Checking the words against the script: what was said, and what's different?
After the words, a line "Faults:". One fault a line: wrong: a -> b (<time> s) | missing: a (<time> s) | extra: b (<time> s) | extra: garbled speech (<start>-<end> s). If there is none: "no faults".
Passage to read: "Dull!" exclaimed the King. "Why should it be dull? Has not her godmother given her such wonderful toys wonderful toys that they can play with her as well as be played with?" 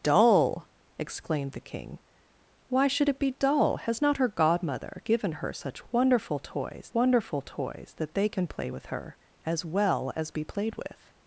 "Dull!" exclaimed the King. "Why should it be dull? Has not her godmother given her such wonderful toys wonderful toys that they can play with her as well as be played with?"
Faults:
no faults